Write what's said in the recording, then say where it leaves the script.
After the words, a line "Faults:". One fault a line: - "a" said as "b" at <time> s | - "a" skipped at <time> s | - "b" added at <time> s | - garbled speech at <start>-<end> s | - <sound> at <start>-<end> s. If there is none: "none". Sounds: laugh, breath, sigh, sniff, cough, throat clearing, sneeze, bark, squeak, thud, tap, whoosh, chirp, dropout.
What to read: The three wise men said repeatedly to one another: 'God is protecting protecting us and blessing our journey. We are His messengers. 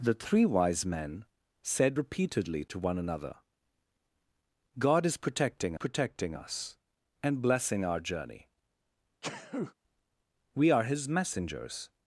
The three wise men said repeatedly to one another: 'God is protecting protecting us and blessing our journey. We are His messengers.
Faults:
- sneeze at 9.2-9.7 s